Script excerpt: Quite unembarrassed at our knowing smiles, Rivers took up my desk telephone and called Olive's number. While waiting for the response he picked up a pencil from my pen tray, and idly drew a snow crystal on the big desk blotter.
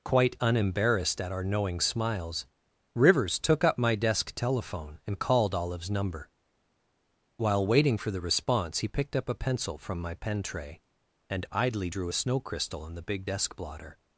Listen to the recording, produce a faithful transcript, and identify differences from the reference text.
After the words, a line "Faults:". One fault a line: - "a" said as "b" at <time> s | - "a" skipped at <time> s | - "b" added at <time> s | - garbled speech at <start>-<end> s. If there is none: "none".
Quite unembarrassed at our knowing smiles, Rivers took up my desk telephone and called Olive's number. While waiting for the response he picked up a pencil from my pen tray, and idly drew a snow crystal on the big desk blotter.
Faults:
none